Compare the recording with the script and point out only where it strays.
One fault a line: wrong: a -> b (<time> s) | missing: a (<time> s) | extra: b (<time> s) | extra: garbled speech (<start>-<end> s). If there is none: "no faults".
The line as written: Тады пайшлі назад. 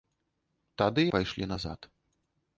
no faults